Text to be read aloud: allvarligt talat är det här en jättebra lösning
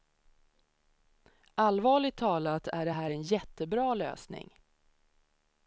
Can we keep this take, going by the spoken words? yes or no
yes